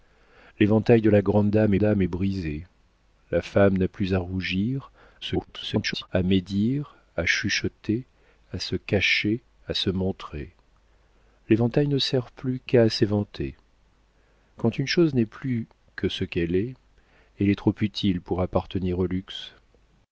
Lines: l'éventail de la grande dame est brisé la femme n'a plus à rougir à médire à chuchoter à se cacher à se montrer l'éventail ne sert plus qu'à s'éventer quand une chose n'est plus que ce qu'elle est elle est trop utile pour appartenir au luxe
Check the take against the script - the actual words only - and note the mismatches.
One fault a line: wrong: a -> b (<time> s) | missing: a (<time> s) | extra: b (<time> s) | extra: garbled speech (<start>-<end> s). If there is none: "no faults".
extra: dame (1.8 s)
extra: garbled speech (5.2-6.1 s)